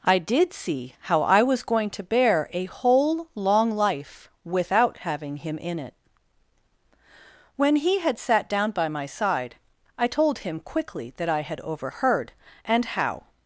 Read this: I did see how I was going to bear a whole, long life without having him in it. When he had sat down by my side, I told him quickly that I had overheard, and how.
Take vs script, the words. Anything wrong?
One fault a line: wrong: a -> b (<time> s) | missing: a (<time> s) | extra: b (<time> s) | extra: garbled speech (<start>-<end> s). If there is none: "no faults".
no faults